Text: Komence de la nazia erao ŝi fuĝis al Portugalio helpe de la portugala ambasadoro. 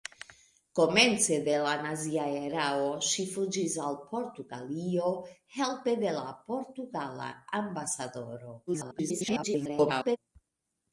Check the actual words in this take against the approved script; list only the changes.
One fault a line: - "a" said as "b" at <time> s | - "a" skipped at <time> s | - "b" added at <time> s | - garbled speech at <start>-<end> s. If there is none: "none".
- garbled speech at 8.7-10.2 s